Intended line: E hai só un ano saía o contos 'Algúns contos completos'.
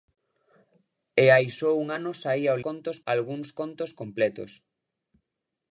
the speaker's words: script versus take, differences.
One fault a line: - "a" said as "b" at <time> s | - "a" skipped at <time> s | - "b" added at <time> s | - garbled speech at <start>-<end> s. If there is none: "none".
none